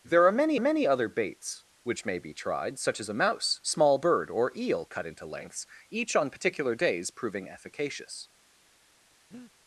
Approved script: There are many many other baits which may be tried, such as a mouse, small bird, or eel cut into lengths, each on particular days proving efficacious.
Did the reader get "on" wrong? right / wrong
right